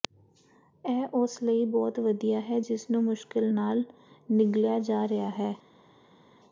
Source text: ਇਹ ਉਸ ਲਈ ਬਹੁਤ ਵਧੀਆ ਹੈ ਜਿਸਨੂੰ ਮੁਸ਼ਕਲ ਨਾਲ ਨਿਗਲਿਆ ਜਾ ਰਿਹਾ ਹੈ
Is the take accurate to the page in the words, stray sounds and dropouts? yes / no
yes